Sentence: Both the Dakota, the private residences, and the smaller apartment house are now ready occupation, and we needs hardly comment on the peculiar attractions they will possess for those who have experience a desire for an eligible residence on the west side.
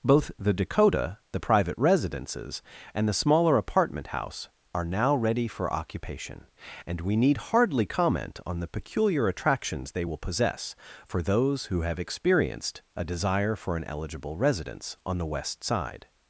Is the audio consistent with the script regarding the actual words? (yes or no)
no